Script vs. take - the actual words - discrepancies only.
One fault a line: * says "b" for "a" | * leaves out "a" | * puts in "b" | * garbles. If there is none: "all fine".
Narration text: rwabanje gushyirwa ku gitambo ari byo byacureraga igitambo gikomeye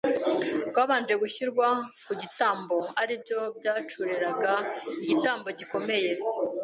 all fine